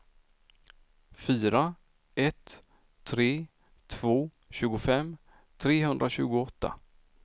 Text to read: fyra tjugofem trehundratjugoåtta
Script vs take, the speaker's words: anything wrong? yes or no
yes